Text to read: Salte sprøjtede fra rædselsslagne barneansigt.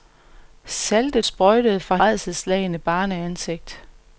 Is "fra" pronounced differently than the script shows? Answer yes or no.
no